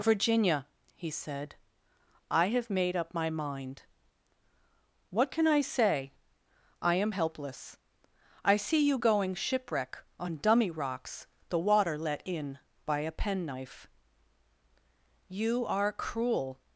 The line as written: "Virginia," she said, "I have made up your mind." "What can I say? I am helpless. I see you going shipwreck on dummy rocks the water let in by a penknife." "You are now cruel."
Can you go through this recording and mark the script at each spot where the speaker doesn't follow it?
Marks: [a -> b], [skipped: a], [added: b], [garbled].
"Virginia," [she -> he] said, "I have made up [your -> my] mind." "What can I say? I am helpless. I see you going shipwreck on dummy rocks the water let in by a penknife." "You are [skipped: now] cruel."